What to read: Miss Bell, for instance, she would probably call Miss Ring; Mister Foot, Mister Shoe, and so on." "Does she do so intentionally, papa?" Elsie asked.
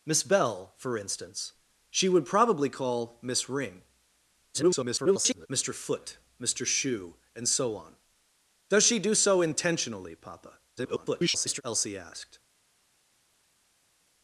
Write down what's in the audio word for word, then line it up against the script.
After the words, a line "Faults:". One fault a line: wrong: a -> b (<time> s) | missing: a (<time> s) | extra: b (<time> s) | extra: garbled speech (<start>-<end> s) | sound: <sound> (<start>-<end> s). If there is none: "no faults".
Miss Bell, for instance, she would probably call Miss Ring; [garbled] Mister Foot, Mister Shoe, and so on." "Does she do so intentionally, papa?" [garbled] Elsie asked.
Faults:
extra: garbled speech (4.5-5.5 s)
extra: garbled speech (10.8-11.6 s)